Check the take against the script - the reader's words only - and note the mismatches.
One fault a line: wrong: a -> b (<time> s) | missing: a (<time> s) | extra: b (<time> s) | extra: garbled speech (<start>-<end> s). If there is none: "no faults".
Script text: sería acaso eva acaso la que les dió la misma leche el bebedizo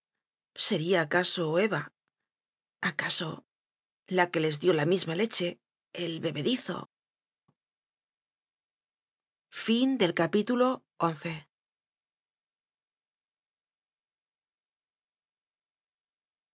no faults